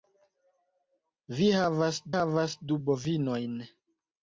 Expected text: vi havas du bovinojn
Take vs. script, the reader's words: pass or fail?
fail